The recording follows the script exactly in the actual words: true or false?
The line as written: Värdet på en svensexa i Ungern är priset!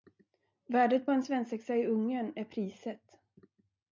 true